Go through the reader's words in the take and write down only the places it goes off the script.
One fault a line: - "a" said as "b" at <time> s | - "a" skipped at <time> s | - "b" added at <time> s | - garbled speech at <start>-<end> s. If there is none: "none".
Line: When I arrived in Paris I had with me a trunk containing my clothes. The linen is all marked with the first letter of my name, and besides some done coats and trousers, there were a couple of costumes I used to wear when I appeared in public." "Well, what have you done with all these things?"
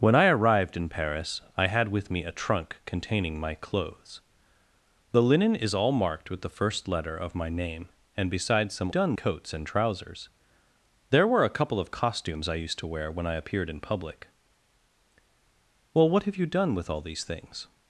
none